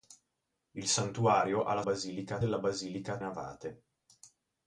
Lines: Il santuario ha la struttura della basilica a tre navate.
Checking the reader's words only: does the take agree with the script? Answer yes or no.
no